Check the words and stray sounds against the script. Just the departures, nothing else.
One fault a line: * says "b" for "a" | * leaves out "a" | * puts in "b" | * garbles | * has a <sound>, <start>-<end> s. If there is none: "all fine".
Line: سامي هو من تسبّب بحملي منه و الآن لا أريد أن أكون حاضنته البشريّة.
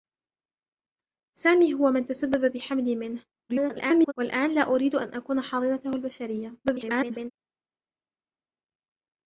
* garbles
* garbles